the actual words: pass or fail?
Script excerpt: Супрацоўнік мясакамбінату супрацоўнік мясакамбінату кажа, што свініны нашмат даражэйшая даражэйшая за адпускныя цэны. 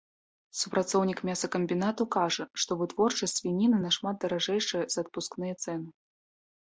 fail